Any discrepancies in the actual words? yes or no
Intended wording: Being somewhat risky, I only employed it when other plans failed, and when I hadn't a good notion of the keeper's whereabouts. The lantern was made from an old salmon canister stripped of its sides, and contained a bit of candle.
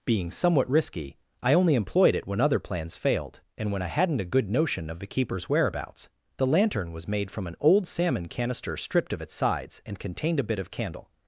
no